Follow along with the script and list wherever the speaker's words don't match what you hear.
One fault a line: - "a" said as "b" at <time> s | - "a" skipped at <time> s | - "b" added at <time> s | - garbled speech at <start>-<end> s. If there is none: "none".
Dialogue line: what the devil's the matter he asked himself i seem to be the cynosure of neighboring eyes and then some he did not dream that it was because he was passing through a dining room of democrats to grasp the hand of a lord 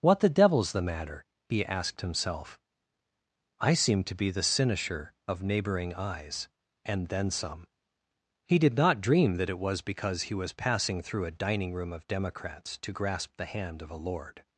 none